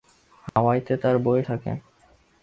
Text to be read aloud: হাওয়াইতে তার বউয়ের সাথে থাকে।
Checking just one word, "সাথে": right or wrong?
wrong